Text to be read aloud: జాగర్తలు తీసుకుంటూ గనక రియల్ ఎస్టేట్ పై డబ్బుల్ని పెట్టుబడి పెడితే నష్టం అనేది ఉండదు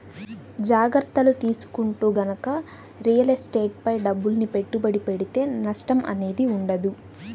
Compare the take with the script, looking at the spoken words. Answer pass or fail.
pass